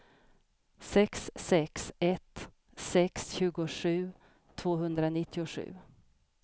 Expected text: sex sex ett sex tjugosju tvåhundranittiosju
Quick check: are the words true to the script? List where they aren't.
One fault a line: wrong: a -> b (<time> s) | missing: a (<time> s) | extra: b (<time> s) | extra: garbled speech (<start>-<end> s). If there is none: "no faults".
no faults